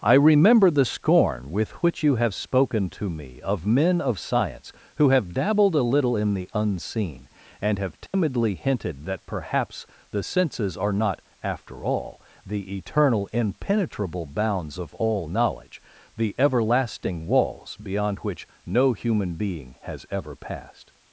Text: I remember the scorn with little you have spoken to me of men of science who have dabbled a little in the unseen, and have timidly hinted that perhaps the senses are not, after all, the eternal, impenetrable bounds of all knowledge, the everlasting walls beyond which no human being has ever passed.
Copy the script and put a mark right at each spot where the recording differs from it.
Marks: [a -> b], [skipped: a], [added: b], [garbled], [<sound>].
I remember the scorn with [little -> which] you have spoken to me of men of science who have dabbled a little in the unseen, and have timidly [dropout] hinted that perhaps the senses are not, after all, the eternal, impenetrable bounds of all knowledge, the everlasting walls beyond which no human being has ever passed.